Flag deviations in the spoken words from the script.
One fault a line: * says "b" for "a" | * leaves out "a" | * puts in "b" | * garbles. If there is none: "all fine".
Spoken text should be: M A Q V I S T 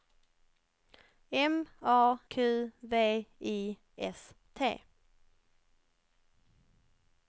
all fine